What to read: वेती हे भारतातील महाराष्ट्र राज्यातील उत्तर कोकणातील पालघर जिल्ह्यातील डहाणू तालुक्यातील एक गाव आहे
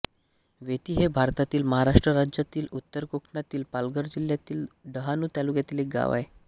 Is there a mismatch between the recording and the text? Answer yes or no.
no